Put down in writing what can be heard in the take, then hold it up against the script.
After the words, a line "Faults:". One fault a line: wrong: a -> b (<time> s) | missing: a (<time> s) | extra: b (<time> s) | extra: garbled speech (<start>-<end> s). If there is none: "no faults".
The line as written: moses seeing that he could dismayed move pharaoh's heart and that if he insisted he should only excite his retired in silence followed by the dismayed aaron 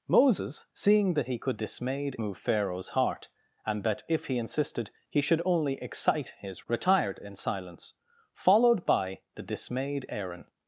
moses seeing that he could dismayed move pharaoh's heart and that if he insisted he should only excite his retired in silence followed by the dismayed aaron
Faults:
no faults